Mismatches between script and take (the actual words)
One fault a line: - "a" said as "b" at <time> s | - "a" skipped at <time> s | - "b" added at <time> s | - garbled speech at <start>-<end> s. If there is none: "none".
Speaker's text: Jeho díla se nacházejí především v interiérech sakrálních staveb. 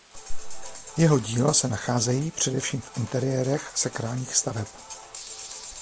none